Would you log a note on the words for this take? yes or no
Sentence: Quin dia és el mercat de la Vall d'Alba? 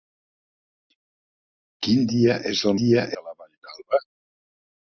yes